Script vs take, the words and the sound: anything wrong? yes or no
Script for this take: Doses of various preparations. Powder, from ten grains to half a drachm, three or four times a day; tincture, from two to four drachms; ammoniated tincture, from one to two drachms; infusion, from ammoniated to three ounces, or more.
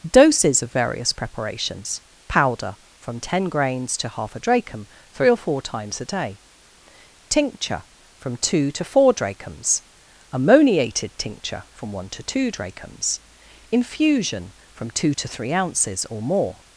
yes